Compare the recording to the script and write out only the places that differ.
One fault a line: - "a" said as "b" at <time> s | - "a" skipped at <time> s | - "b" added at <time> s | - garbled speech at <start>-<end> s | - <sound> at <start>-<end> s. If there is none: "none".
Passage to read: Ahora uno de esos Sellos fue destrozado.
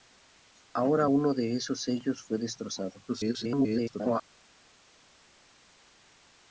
- garbled speech at 3.1-4.2 s